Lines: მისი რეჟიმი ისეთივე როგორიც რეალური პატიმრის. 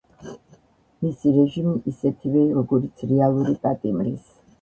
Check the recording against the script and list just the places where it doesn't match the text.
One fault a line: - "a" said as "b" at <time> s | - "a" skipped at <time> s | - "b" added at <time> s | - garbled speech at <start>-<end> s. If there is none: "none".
none